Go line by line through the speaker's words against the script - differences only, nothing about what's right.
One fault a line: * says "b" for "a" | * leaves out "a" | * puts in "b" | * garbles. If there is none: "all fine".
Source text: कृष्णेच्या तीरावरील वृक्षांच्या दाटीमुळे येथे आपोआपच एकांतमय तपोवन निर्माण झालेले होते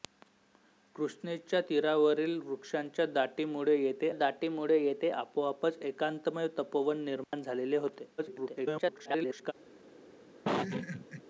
* puts in "दाटीमुळे येथे"
* garbles